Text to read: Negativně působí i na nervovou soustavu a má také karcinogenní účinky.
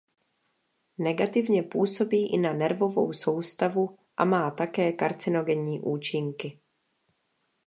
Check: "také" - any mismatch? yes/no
no